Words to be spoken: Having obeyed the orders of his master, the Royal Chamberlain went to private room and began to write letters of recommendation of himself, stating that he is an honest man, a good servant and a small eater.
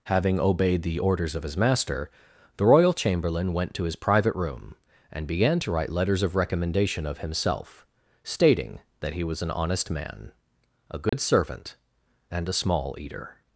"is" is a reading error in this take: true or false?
true